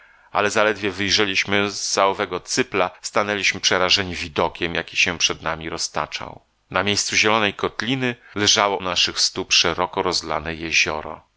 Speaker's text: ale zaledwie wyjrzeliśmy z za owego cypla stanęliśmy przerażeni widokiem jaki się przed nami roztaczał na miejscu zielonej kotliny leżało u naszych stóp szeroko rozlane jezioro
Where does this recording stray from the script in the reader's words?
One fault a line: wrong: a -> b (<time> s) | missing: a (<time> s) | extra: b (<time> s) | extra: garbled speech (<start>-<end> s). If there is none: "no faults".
missing: u (8.8 s)